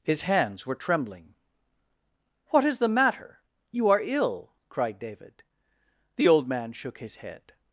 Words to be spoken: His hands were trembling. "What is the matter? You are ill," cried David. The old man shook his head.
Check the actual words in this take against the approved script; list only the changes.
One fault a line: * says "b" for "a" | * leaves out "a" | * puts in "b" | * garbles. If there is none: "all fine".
all fine